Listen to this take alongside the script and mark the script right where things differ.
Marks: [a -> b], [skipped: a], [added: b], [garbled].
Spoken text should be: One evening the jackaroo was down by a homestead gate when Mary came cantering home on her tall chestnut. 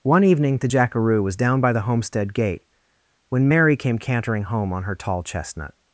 One evening the jackaroo was down by [a -> the] homestead gate when Mary came cantering home on her tall chestnut.